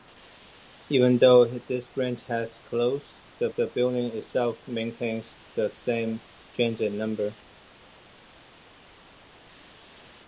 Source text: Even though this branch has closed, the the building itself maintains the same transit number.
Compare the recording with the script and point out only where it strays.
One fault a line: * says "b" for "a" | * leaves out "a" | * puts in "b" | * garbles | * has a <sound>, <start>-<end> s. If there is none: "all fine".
all fine